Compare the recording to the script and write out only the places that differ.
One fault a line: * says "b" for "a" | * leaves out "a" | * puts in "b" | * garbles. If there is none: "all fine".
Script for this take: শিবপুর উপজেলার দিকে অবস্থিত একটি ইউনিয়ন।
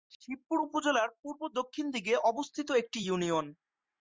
* puts in "পূর্ব দক্ষিণ"